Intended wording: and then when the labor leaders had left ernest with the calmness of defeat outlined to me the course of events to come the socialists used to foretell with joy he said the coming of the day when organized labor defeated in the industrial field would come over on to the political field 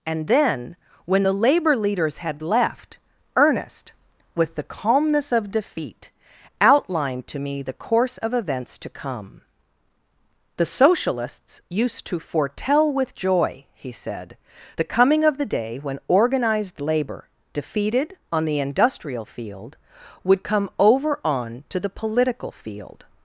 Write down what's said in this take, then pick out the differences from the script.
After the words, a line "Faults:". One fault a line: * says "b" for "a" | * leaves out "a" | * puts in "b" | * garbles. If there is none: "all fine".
and then when the labor leaders had left ernest with the calmness of defeat outlined to me the course of events to come the socialists used to foretell with joy he said the coming of the day when organized labor defeated on the industrial field would come over on to the political field
Faults:
* says "on" for "in"